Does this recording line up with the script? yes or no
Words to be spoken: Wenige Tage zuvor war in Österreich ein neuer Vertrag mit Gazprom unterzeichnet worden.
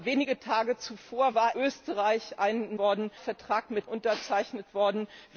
no